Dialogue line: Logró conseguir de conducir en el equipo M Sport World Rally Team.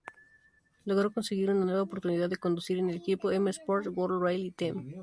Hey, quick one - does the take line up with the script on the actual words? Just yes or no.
no